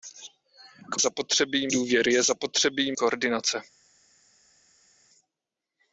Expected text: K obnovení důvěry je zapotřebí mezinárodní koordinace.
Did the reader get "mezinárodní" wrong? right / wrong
wrong